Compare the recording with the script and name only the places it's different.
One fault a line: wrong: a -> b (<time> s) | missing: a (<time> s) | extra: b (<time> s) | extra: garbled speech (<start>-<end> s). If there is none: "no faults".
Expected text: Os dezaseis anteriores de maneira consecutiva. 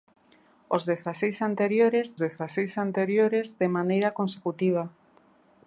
extra: dezaseis anteriores (2.2 s)